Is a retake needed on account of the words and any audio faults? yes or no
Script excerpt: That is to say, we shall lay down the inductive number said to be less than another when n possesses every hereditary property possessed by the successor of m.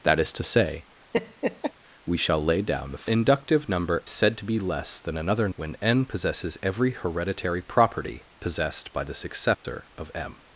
yes